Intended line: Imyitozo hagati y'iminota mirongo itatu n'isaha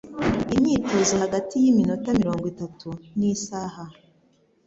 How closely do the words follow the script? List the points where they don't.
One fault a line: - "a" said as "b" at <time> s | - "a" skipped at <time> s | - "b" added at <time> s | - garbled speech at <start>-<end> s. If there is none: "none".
none